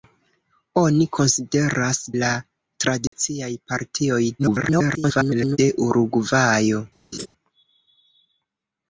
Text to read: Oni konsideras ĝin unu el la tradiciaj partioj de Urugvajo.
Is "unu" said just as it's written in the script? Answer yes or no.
no